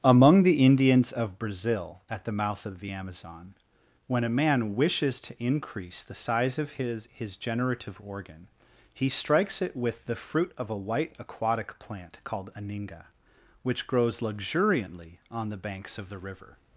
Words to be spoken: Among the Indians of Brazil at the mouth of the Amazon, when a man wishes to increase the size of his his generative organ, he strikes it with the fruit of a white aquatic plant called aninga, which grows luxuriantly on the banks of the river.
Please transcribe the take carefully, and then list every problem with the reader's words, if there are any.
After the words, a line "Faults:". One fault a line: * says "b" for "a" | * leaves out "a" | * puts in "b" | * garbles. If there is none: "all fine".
Among the Indians of Brazil at the mouth of the Amazon, when a man wishes to increase the size of his his generative organ, he strikes it with the fruit of a white aquatic plant called aninga, which grows luxuriantly on the banks of the river.
Faults:
all fine